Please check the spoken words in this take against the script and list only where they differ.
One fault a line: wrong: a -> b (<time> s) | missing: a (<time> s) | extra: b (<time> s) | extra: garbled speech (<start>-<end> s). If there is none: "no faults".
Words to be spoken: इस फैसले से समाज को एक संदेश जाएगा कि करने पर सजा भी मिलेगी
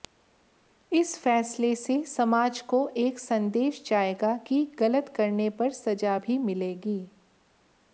extra: गलत (4.8 s)